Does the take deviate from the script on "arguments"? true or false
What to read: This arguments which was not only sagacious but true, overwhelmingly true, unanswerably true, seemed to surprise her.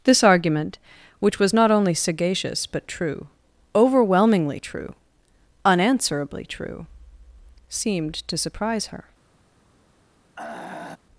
true